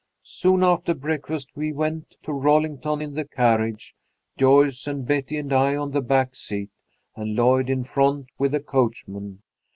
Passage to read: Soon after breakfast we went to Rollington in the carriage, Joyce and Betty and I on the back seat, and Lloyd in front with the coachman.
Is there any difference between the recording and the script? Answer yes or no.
no